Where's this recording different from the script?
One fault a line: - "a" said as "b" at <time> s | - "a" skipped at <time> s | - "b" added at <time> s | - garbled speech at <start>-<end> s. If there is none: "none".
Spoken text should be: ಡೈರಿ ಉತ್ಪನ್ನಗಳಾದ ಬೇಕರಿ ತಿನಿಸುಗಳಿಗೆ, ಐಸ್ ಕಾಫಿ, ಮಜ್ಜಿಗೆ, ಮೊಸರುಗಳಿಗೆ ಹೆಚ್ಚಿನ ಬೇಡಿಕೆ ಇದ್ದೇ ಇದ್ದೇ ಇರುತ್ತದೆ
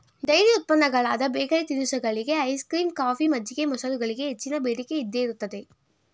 - "ಕ್ರೀಮ್" added at 2.6 s
- "ಇದ್ದೇ" skipped at 5.2 s